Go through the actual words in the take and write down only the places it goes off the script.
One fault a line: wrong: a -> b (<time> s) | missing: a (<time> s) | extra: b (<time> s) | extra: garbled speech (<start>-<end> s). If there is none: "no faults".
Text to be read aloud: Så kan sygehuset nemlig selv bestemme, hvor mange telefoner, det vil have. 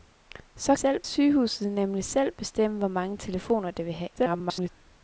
wrong: kan -> selv (0.7 s)
extra: garbled speech (4.2-4.7 s)